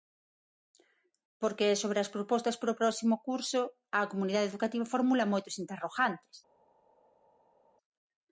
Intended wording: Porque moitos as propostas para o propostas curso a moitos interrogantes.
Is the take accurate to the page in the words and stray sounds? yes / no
no